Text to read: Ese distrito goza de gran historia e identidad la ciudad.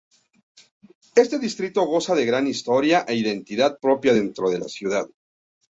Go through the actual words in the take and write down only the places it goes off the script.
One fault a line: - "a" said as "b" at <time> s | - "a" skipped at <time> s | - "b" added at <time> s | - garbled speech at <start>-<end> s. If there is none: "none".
- "Ese" said as "Este" at 1.1 s
- "propia dentro de" added at 3.8 s